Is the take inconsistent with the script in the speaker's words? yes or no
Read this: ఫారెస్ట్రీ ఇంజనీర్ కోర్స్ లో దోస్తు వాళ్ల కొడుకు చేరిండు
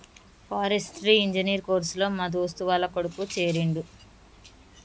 yes